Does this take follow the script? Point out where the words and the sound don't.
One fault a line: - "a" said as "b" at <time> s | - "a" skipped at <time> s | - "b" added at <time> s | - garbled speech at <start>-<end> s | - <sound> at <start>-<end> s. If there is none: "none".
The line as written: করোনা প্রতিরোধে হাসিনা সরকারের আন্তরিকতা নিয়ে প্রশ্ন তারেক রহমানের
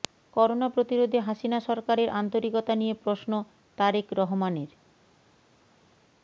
none